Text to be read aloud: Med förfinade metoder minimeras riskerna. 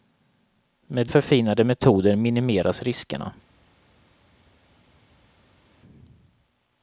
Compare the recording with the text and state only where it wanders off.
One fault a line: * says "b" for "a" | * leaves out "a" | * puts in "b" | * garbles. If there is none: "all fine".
all fine